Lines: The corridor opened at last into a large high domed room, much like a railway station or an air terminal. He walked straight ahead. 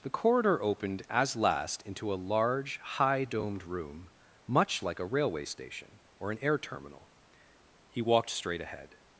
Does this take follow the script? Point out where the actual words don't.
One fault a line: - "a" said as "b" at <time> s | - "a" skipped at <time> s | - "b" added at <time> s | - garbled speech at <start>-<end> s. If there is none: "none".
- "at" said as "as" at 1.1 s